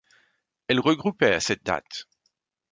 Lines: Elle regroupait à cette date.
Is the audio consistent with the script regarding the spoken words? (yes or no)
yes